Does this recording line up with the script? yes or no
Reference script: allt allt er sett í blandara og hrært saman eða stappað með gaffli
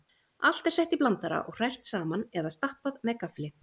no